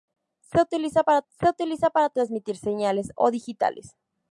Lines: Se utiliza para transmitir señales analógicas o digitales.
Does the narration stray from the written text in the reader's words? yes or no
yes